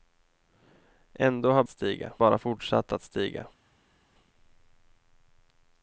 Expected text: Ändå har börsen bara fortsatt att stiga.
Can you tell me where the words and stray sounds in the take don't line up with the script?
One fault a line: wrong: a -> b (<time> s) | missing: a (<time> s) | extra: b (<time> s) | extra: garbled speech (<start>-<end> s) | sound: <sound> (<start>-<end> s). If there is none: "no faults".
wrong: börsen -> stiga (1.7 s)